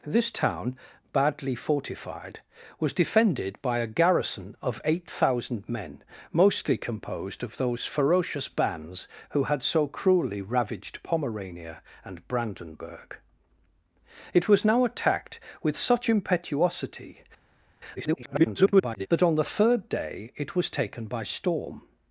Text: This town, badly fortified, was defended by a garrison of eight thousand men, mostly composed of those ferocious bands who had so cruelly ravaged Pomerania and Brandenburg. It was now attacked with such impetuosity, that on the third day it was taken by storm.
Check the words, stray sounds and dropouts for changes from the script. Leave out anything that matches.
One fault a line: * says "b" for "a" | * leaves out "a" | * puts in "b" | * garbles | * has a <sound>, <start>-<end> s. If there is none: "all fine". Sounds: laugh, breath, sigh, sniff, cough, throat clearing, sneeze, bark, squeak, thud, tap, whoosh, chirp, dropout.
* garbles